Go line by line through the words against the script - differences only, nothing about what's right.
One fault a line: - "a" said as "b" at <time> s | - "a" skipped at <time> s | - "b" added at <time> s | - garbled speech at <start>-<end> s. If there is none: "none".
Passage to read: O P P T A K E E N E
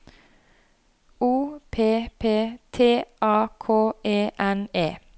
- "E" skipped at 4.3 s